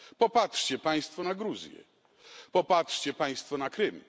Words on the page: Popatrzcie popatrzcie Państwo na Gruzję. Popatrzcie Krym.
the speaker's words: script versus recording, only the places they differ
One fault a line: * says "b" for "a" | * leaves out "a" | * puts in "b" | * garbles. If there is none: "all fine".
* leaves out "popatrzcie"
* puts in "Państwo na"